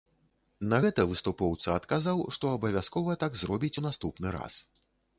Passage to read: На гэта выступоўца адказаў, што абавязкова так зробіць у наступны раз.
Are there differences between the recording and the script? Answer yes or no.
no